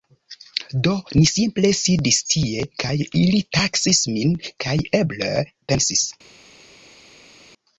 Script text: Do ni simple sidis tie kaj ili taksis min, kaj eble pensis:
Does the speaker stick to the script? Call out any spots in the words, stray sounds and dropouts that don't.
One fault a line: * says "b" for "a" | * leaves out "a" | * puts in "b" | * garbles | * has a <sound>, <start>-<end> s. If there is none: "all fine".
all fine